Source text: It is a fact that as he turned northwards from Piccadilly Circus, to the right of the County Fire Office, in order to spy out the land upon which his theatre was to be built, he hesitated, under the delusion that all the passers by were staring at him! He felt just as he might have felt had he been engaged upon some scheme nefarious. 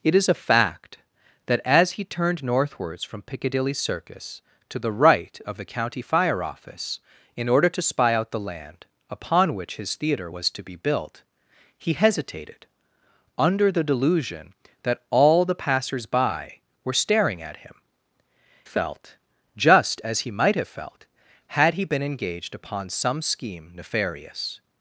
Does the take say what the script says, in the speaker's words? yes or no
no